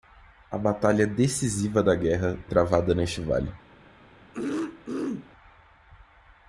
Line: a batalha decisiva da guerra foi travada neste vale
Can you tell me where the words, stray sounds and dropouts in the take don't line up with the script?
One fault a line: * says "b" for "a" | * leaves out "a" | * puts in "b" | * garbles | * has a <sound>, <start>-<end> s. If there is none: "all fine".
* leaves out "foi"
* has a throat clearing, 4.3-5.3 s